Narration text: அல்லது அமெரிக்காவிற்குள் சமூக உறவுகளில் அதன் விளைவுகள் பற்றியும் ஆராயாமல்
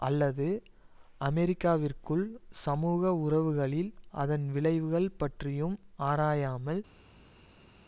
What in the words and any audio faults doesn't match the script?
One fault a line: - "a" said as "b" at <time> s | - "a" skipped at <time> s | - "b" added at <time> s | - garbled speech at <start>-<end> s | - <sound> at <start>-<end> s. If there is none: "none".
none